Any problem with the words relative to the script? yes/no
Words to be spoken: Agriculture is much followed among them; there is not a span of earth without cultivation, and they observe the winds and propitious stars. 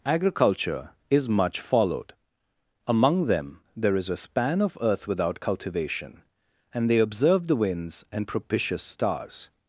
yes